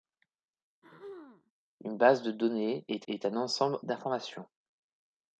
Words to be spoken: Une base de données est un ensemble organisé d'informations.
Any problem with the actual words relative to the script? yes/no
yes